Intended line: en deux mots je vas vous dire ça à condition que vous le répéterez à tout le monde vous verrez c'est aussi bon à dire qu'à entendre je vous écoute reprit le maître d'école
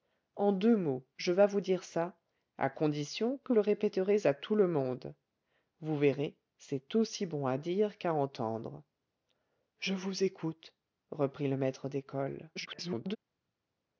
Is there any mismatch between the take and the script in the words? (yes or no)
yes